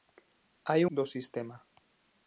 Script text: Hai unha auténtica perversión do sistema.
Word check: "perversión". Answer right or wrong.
wrong